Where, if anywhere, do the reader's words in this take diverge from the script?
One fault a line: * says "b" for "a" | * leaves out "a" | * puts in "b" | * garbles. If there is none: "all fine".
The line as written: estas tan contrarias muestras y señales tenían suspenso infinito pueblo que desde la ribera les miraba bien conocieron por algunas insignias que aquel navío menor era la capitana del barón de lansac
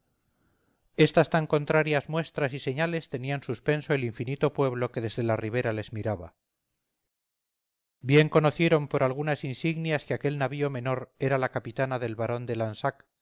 * puts in "el"